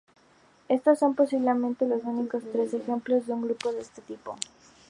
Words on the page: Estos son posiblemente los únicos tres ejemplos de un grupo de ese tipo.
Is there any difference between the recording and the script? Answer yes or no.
yes